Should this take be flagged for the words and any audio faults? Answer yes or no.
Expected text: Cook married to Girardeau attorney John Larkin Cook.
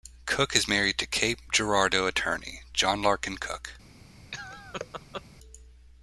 yes